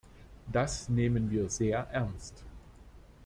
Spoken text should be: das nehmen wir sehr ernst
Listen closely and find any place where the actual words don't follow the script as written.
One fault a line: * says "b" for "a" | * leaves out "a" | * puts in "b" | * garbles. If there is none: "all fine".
all fine